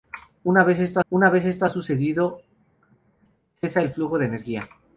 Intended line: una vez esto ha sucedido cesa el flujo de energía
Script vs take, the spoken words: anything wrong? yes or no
yes